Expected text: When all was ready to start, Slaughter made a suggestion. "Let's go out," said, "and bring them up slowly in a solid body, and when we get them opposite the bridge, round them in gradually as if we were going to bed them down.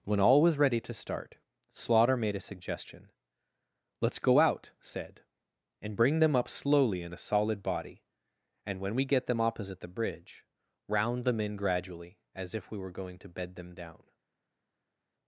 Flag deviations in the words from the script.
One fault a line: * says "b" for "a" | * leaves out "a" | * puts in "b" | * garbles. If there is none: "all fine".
all fine